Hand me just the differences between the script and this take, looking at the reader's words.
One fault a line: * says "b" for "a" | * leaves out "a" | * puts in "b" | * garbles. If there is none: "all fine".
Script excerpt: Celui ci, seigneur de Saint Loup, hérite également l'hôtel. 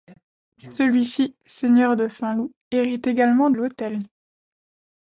all fine